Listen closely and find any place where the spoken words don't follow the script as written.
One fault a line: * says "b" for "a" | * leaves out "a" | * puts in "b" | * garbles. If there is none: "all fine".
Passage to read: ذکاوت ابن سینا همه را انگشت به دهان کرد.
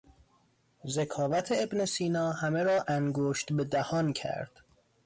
all fine